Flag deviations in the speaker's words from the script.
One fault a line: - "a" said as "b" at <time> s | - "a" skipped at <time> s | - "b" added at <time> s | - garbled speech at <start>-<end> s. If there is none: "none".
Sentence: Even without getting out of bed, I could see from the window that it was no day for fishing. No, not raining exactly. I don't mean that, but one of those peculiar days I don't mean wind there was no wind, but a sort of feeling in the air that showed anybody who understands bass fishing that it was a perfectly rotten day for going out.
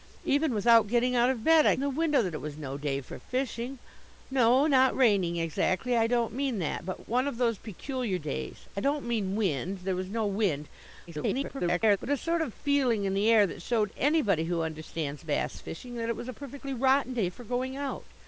- "could see from" skipped at 1.8 s
- garbled speech at 11.1-12.0 s